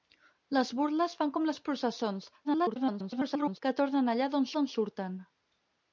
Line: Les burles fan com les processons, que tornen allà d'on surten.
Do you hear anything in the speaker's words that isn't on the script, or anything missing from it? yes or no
yes